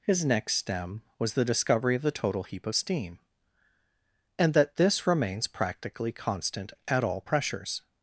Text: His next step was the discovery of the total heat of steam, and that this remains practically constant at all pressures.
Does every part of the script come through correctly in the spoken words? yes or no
no